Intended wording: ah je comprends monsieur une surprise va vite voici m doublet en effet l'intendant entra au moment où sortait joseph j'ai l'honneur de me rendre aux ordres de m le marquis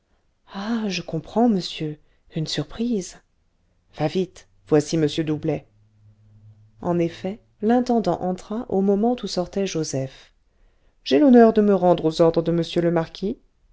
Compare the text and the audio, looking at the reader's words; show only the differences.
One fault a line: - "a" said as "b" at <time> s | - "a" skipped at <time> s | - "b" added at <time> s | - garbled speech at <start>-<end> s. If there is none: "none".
none